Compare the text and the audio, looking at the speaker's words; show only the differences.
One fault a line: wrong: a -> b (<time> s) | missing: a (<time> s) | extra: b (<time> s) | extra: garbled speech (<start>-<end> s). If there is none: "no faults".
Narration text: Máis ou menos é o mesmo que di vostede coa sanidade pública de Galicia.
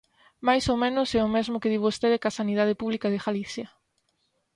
no faults